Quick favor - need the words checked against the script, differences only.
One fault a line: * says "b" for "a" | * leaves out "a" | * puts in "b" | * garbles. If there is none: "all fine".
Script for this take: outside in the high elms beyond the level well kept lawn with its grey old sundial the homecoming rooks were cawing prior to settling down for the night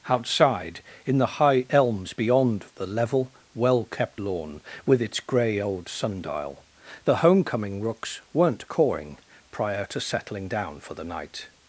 * says "weren't" for "were"